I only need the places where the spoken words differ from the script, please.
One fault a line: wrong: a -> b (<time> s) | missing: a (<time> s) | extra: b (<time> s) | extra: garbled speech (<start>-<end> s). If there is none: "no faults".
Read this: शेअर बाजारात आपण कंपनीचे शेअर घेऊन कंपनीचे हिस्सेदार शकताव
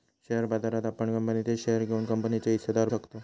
no faults